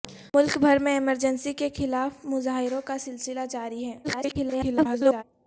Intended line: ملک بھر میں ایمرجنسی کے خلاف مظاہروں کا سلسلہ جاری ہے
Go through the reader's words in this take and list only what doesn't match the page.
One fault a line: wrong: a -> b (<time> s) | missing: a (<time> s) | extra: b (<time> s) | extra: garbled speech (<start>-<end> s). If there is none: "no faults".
extra: garbled speech (4.0-5.2 s)